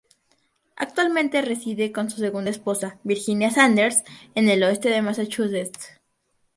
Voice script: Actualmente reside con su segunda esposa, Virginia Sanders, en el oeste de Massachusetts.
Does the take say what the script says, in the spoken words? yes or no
yes